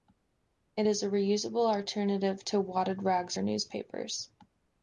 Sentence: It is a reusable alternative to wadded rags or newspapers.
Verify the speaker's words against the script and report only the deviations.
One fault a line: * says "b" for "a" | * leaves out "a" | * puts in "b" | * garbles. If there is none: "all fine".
all fine